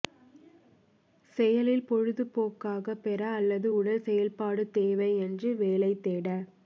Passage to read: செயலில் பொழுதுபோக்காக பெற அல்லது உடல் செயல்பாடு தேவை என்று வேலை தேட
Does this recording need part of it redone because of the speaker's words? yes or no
no